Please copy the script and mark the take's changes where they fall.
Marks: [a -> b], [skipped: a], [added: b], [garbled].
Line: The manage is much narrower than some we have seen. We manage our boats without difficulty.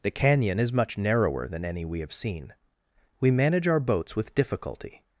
The [manage -> canyon] is much narrower than [some -> any] we have seen. We manage our boats [without -> with] difficulty.